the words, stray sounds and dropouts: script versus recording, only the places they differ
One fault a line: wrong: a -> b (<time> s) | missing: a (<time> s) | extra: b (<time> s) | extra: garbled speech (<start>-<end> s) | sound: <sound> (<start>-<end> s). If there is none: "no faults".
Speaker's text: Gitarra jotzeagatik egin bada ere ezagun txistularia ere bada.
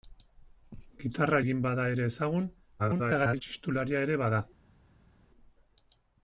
missing: jotzeagatik (1.4 s)
extra: garbled speech (2.8-3.4 s)